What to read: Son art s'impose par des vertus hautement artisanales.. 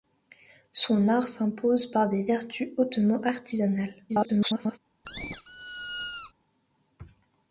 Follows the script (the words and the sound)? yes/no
no